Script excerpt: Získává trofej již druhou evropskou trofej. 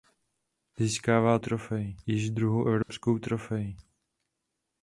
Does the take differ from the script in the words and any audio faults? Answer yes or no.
yes